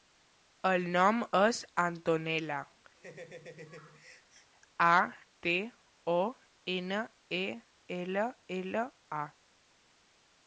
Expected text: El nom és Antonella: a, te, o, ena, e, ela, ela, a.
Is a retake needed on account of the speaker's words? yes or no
no